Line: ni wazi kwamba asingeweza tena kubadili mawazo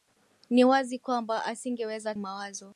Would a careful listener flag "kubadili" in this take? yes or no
yes